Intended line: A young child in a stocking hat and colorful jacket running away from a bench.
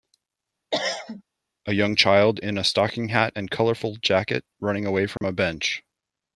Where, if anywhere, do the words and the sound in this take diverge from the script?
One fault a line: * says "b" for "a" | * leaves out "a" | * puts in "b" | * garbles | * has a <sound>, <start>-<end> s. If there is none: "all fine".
* has a cough, 0.7-1.2 s
* has a dropout, 5.2-5.2 s